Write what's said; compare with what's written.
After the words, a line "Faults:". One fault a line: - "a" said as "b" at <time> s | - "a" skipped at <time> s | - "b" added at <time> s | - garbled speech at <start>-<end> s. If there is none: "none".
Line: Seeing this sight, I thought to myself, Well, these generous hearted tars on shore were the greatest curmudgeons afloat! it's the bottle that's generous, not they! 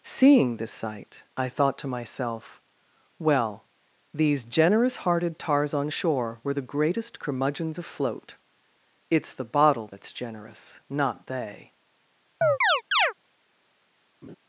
Seeing this sight, I thought to myself, Well, these generous hearted tars on shore were the greatest curmudgeons afloat! it's the bottle that's generous, not they!
Faults:
none